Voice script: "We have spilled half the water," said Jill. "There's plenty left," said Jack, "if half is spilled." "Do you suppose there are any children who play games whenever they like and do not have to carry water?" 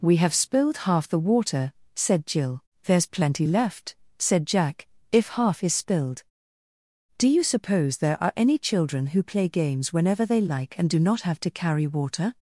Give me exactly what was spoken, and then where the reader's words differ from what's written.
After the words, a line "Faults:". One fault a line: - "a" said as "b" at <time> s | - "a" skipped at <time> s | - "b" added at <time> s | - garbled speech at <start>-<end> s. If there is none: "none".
"We have spilled half the water," said Jill. "There's plenty left," said Jack, "if half is spilled." "Do you suppose there are any children who play games whenever they like and do not have to carry water?"
Faults:
none